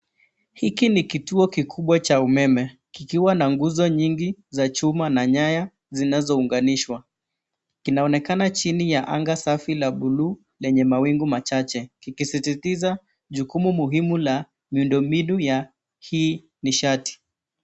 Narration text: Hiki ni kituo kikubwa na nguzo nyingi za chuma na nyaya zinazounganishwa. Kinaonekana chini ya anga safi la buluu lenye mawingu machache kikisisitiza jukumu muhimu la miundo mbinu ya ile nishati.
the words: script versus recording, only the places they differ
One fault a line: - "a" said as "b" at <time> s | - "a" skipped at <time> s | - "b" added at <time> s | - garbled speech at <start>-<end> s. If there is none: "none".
- "cha umeme kikiwa" added at 2.0 s
- "ile" said as "hii" at 16.0 s